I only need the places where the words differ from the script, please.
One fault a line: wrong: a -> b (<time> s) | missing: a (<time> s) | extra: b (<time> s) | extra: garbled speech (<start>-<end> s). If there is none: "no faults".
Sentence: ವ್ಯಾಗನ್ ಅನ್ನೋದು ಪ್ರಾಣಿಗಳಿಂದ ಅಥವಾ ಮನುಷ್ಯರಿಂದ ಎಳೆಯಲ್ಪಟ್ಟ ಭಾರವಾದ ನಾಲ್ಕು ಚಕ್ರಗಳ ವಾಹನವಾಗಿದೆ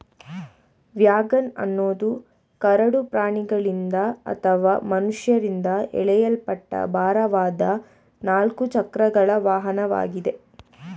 extra: ಕರಡು (2.6 s)